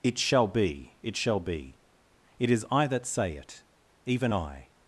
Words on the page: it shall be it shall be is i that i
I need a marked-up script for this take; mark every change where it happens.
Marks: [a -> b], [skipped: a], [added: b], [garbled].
it shall be it shall be [added: it] is i that [added: say it even] i